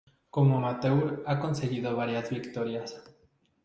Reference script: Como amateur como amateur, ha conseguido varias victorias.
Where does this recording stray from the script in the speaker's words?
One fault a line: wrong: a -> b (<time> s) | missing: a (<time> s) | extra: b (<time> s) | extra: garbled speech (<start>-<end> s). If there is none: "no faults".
missing: como amateur (1.2 s)